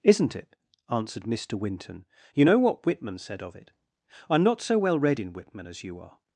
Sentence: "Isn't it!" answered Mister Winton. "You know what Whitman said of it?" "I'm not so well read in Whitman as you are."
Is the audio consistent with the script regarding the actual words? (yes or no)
yes